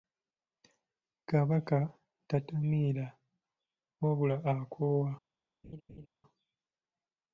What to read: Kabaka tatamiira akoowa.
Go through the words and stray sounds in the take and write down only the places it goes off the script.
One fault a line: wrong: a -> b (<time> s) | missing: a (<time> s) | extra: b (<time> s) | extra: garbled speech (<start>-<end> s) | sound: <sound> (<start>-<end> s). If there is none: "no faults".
extra: wabula (4.0 s)
sound: laugh (5.6-6.1 s)